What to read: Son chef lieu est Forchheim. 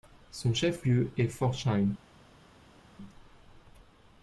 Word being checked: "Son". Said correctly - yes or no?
yes